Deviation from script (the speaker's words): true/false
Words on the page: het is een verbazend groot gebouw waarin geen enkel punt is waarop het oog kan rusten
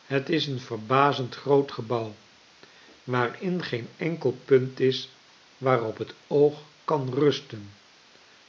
false